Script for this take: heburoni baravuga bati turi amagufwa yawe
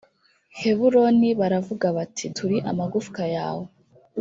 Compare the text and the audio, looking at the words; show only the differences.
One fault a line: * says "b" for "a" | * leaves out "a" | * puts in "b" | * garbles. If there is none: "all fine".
all fine